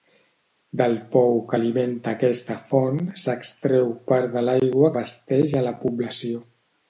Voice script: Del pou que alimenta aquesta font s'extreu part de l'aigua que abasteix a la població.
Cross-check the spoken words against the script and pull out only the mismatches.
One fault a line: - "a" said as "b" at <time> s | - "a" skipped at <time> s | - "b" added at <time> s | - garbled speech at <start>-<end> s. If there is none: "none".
- "que" skipped at 4.9 s